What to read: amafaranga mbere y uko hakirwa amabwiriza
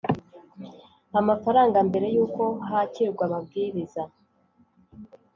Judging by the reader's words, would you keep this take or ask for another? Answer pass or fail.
pass